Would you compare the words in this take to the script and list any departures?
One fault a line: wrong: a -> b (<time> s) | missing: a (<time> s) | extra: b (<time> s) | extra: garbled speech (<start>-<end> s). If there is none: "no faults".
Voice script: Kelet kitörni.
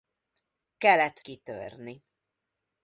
no faults